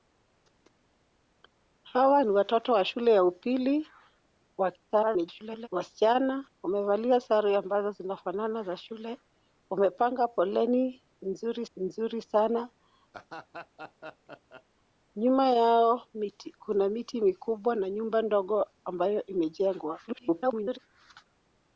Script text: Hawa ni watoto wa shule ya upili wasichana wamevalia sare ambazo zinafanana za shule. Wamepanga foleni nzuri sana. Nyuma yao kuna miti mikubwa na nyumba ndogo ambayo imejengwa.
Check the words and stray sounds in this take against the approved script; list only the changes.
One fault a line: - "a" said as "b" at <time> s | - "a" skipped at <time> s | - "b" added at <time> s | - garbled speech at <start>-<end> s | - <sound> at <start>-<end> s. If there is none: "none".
- garbled speech at 4.9-5.7 s
- "nzuri" added at 11.8 s
- laugh at 13.1-14.6 s
- garbled speech at 20.1-20.8 s